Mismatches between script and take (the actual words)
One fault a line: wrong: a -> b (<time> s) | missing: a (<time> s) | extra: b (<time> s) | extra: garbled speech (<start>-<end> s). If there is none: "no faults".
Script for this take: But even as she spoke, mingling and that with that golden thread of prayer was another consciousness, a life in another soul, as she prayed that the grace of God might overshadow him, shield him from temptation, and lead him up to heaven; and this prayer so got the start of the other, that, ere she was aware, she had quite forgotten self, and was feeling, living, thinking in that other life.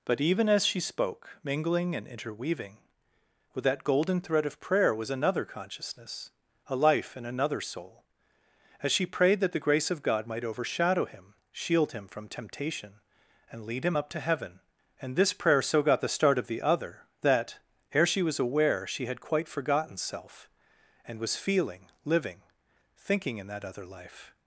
wrong: that -> interweaving (2.1 s)